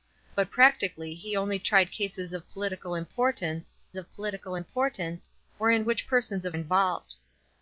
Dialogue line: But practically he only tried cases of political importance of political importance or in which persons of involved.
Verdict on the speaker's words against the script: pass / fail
pass